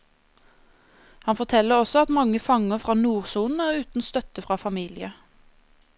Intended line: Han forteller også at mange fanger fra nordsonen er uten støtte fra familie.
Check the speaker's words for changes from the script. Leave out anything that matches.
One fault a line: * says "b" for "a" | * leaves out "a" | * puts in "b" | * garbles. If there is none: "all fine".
all fine